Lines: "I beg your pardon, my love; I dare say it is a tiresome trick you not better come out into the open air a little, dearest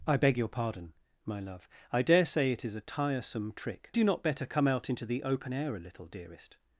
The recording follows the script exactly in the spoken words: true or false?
true